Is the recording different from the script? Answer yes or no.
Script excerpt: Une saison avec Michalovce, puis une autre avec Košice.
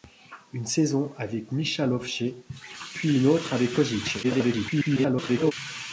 yes